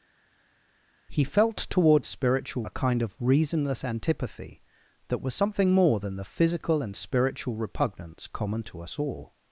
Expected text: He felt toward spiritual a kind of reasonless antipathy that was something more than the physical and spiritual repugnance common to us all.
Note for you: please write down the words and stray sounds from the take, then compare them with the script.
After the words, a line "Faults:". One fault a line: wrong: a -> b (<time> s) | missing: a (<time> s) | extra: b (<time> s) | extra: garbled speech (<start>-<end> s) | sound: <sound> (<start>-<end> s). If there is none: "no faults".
He felt toward spiritual a kind of reasonless antipathy that was something more than the physical and spiritual repugnance common to us all.
Faults:
no faults